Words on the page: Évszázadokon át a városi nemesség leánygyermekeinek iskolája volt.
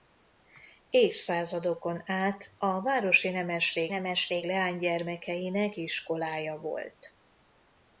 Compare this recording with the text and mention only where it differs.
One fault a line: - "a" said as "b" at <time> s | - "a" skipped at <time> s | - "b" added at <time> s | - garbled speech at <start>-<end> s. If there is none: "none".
- "nemesség" added at 3.9 s